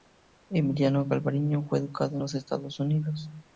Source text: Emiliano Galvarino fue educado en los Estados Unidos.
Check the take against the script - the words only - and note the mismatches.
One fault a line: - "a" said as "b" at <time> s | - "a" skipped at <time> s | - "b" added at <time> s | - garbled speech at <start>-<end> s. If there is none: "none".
none